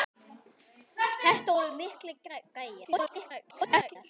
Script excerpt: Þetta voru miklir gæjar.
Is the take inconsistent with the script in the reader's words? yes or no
yes